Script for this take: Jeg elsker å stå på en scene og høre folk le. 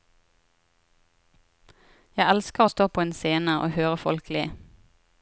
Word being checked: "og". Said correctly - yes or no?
yes